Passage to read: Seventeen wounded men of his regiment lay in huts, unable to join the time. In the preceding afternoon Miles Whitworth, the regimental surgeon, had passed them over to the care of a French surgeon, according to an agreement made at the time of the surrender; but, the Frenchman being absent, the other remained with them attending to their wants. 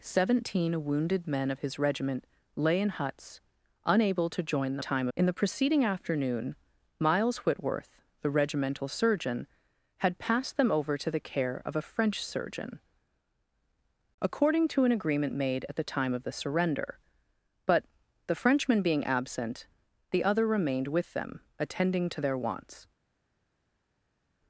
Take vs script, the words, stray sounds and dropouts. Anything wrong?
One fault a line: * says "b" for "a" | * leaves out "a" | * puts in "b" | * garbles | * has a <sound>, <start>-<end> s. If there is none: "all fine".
all fine